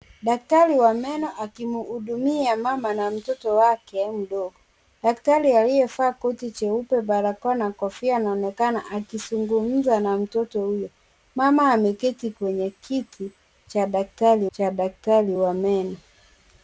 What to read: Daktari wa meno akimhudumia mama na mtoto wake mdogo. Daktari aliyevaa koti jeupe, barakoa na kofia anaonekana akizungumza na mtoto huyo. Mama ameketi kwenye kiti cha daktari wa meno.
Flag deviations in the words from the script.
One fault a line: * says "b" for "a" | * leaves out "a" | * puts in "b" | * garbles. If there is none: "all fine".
* puts in "cha daktari"